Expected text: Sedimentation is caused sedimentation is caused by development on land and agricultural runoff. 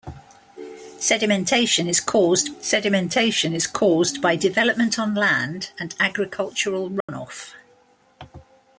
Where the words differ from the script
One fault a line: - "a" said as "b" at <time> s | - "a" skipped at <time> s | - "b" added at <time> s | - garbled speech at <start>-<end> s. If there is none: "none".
none